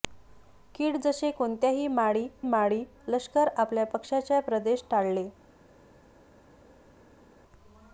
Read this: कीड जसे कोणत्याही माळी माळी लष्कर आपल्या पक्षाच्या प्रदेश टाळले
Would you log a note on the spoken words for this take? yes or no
no